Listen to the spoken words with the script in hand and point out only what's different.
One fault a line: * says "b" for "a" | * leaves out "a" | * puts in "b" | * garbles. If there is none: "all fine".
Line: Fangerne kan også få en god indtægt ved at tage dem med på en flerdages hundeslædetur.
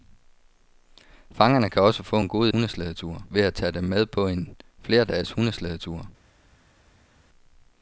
* says "hundeslædetur" for "indtægt"